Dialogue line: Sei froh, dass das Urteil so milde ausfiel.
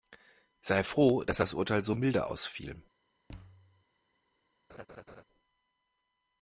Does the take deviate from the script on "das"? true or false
false